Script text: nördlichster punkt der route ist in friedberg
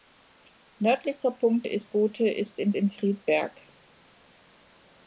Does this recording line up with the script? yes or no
no